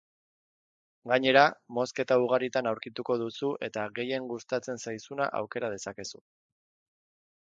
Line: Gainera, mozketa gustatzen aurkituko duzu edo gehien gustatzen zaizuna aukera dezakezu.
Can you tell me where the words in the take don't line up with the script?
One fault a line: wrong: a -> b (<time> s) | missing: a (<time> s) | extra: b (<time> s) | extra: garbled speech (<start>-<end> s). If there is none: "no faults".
wrong: gustatzen -> ugaritan (2.2 s)
wrong: edo -> eta (3.7 s)